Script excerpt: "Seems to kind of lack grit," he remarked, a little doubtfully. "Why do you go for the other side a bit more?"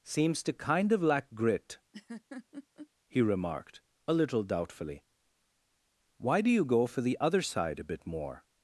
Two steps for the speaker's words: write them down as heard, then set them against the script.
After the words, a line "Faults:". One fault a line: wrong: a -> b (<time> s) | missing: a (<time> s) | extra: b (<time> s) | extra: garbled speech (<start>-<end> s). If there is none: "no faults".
"Seems to kind of lack grit," he remarked, a little doubtfully. "Why do you go for the other side a bit more?"
Faults:
no faults